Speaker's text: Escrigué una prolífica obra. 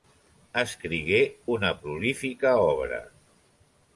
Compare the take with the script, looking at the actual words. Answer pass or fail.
pass